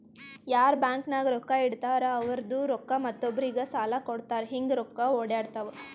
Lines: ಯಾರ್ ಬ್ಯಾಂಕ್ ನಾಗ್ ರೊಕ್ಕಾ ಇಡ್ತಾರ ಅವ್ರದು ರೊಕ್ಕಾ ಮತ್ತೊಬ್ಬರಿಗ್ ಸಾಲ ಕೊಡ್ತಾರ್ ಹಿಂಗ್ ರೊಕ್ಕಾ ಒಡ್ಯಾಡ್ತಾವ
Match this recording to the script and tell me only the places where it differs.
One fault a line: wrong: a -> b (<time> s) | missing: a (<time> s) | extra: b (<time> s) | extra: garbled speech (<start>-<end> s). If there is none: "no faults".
no faults